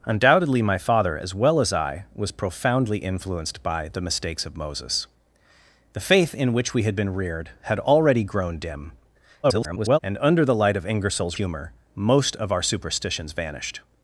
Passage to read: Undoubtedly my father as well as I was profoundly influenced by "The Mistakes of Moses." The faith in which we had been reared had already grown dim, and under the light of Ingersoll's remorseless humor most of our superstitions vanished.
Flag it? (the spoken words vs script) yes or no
yes